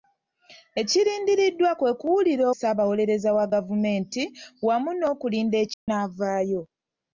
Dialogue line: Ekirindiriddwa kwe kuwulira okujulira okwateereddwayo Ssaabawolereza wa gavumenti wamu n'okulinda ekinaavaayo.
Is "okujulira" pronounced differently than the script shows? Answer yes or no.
yes